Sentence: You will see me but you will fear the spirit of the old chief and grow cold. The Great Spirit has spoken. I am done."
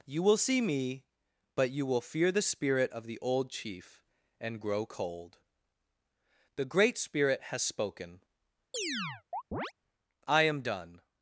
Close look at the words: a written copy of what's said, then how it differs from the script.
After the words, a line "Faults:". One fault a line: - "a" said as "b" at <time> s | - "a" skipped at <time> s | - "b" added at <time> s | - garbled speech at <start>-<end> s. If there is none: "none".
You will see me but you will fear the spirit of the old chief and grow cold. The Great Spirit has spoken. I am done."
Faults:
none